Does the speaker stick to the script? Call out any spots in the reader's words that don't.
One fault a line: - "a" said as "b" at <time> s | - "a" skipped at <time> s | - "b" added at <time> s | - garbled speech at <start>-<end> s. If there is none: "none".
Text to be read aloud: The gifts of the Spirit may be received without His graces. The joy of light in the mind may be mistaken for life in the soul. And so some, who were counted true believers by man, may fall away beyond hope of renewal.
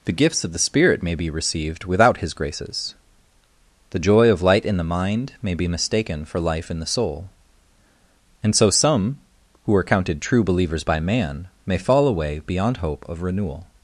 - "were" said as "are" at 9.8 s